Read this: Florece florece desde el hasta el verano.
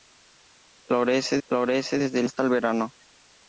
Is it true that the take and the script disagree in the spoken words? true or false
false